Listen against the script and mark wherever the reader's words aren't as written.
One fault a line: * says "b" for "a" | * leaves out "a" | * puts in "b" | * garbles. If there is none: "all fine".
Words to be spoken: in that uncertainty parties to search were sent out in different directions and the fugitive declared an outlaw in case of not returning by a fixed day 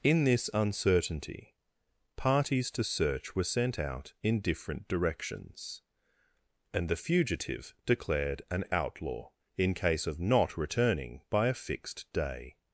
* says "this" for "that"